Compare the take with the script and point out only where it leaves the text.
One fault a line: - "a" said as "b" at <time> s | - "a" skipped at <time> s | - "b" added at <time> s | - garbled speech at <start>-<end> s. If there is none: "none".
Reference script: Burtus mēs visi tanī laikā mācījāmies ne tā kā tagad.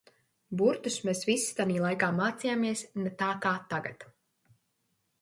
none